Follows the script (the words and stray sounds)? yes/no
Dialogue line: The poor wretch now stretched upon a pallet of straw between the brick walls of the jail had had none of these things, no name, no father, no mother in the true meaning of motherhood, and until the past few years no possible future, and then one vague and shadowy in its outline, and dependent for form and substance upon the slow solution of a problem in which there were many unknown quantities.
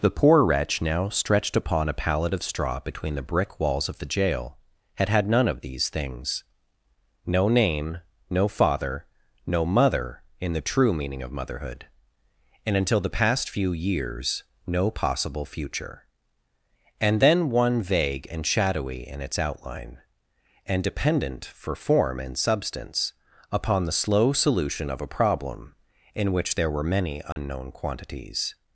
no